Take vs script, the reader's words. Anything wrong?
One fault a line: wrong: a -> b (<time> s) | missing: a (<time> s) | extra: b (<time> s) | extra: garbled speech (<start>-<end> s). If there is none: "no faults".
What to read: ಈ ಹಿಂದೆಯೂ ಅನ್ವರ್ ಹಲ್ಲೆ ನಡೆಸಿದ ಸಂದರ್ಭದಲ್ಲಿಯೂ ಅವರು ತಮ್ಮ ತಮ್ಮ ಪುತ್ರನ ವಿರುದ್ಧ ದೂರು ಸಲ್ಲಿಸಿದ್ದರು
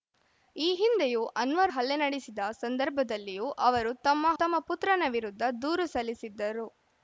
no faults